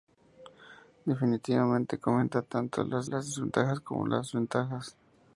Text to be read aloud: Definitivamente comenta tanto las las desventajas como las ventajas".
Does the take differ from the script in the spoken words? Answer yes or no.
no